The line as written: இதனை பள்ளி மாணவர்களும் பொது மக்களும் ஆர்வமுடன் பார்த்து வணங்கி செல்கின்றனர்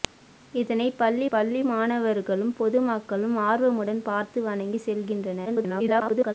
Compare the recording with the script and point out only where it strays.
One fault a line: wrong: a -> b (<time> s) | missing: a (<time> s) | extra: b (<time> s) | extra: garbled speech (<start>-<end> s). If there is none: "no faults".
extra: பள்ளி (1.3 s)
extra: garbled speech (5.4-6.3 s)